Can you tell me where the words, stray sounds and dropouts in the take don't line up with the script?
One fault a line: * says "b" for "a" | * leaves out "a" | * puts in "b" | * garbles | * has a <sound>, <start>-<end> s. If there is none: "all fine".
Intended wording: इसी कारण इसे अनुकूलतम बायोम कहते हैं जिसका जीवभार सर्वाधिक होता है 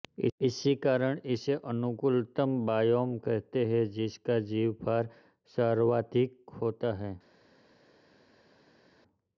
all fine